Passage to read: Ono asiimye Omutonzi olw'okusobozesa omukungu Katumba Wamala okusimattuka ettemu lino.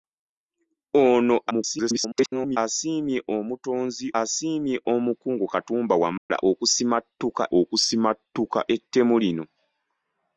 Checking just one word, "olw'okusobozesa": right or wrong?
wrong